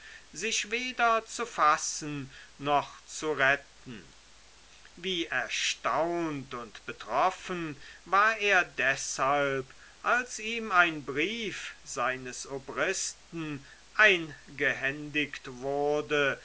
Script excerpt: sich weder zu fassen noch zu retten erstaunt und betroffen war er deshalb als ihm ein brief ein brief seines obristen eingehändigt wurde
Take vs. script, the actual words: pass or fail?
fail